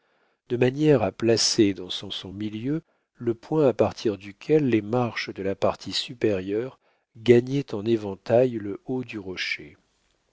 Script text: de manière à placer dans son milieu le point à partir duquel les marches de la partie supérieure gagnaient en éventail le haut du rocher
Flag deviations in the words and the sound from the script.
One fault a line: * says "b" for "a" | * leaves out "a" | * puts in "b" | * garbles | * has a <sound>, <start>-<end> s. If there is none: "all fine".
* puts in "son"